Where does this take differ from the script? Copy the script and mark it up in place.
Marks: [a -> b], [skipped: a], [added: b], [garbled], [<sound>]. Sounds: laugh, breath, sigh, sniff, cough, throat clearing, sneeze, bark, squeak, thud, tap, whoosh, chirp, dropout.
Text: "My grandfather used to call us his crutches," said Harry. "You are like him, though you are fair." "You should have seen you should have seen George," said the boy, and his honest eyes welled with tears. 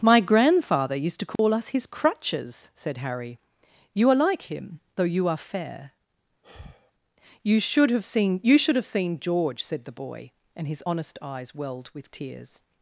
"My grandfather used to call [dropout] us his crutches," said Harry. "You are like him, though you are fair." [sigh] "You should have seen you should have seen George," said the boy, and his honest eyes welled with tears.